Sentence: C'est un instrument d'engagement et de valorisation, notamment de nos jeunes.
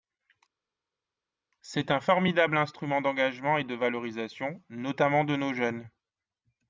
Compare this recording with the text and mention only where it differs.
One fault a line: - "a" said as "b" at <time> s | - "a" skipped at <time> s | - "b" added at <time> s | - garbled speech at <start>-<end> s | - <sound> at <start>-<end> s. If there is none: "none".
- "formidable" added at 2.0 s